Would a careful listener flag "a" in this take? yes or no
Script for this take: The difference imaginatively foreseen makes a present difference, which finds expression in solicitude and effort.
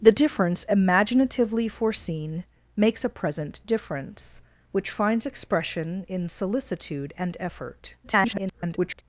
no